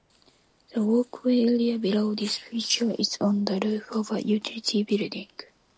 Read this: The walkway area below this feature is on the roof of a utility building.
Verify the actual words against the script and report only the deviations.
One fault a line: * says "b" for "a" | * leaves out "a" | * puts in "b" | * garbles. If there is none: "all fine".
all fine